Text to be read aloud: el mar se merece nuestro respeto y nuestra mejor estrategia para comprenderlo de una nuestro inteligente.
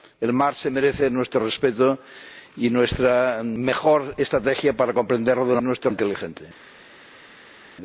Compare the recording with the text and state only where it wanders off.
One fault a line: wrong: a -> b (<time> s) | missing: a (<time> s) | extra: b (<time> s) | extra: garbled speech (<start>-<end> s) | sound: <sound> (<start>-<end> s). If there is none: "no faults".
no faults